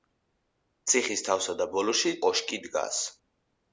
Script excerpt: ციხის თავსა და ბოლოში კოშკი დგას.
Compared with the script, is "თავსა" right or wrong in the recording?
right